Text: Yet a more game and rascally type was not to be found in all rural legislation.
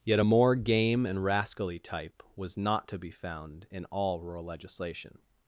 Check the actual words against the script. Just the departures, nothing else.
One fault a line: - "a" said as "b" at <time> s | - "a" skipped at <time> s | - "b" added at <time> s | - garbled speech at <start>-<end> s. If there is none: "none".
none